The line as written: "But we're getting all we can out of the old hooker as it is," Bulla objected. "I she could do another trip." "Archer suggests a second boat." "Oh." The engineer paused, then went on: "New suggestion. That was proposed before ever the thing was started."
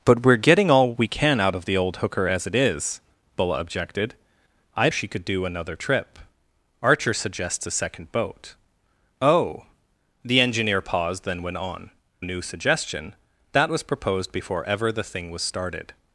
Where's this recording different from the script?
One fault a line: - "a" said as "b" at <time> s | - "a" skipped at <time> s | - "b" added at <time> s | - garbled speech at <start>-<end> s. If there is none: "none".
none